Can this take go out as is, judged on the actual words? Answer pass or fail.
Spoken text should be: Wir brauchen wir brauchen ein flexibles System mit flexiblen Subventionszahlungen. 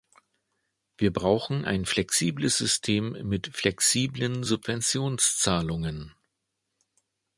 fail